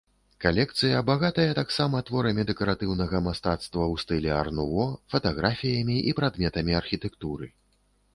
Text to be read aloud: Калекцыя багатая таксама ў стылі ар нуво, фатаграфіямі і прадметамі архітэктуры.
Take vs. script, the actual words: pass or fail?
fail